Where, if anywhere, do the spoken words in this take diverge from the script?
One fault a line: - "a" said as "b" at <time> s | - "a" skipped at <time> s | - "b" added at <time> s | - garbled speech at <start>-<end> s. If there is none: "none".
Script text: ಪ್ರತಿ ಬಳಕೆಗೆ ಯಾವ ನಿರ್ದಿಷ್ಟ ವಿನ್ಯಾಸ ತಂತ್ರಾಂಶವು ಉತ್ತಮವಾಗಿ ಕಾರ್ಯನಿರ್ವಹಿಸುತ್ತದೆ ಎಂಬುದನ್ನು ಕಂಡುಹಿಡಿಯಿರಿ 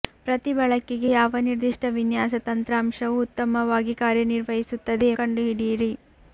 - "ಎಂಬುದನ್ನು" skipped at 5.1 s